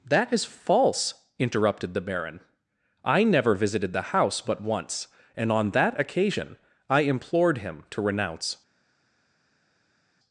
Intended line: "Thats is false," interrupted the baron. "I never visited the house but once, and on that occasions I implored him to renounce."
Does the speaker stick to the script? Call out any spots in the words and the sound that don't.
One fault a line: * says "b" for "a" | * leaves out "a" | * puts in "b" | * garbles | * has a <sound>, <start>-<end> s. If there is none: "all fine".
* says "That" for "Thats"
* says "occasion" for "occasions"